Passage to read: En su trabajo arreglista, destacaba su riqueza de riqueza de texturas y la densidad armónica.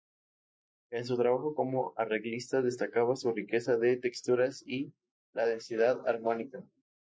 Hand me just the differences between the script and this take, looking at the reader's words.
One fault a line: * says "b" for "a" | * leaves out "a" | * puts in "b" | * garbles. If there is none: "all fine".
* puts in "como"
* leaves out "riqueza de"